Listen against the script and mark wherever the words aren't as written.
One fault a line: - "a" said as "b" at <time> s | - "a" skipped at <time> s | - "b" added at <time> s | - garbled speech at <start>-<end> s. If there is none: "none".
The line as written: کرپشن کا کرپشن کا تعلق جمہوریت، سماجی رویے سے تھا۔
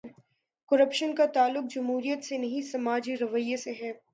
- "کرپشن کا تعلق جمہوریت" said as "تعلق جمہوریت سے نہیں" at 1.2 s
- "تھا" said as "ہے" at 3.7 s